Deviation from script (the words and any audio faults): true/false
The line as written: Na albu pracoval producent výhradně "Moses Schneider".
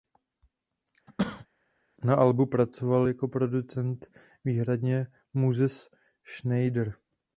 true